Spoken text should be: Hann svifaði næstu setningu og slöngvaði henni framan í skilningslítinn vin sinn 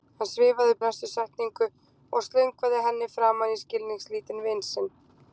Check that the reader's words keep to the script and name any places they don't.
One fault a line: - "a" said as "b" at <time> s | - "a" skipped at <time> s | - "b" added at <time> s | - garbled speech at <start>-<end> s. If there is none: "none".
none